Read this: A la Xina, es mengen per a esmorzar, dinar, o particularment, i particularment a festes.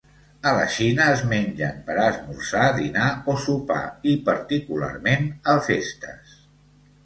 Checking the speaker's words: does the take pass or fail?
fail